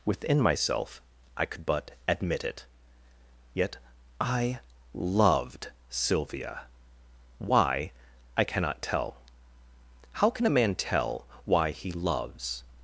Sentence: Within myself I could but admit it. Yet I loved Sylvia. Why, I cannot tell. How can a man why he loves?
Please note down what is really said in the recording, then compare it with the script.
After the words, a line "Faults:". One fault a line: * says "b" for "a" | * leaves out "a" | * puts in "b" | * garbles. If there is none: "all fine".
Within myself I could but admit it. Yet I loved Sylvia. Why, I cannot tell. How can a man tell why he loves?
Faults:
* puts in "tell"